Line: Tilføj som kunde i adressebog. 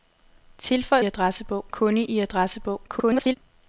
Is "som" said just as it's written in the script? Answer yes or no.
no